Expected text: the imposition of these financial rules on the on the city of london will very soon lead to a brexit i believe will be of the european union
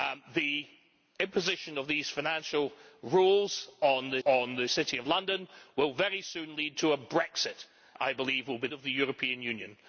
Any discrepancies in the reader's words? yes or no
no